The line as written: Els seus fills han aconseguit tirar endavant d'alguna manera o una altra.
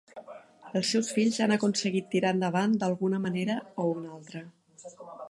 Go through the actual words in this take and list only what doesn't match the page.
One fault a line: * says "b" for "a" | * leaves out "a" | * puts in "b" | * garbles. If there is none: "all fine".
all fine